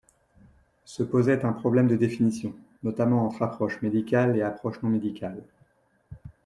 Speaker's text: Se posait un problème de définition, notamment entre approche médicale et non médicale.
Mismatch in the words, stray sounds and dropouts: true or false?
true